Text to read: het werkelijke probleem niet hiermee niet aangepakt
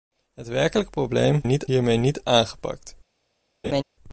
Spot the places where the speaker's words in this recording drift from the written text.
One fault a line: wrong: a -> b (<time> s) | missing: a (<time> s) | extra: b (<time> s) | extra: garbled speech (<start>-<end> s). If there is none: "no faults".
no faults